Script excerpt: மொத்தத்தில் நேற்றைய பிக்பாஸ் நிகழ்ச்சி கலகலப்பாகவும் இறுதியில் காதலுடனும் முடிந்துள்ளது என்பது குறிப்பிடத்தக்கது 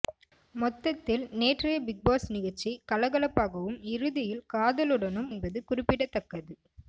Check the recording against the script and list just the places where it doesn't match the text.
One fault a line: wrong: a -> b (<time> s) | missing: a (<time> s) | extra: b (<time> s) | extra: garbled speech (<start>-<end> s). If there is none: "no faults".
missing: முடிந்துள்ளது (5.3 s)